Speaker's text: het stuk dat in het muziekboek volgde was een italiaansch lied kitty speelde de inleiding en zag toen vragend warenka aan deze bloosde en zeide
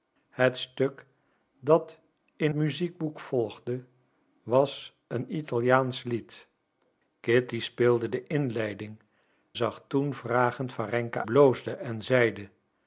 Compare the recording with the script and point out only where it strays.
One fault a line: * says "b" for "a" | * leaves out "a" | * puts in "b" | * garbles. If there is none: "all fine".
* leaves out "het"
* leaves out "en"
* leaves out "aan deze"